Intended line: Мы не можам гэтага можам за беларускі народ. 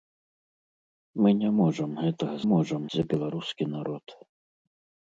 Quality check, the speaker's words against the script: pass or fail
pass